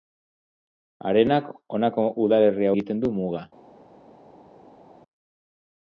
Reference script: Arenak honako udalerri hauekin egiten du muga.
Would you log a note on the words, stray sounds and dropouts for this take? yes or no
yes